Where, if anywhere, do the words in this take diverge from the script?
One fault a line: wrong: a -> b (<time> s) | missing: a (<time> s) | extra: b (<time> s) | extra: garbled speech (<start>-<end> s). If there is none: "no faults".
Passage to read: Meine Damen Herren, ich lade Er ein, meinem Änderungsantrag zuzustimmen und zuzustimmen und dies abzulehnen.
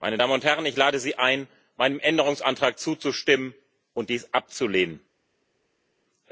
extra: und (0.3 s)
wrong: Er -> Sie (1.0 s)
missing: zuzustimmen und (4.1 s)